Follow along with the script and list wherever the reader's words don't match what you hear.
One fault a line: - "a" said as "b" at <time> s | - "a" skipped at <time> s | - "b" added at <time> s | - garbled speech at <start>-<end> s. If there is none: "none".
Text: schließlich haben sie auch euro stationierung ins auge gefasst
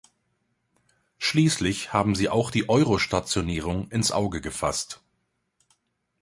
- "die" added at 2.5 s